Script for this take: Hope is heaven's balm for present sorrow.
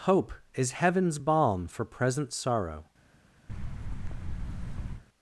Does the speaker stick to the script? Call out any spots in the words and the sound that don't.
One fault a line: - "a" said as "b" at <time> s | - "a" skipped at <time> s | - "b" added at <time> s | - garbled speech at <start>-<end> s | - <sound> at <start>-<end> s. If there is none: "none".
- thud at 3.5-5.0 s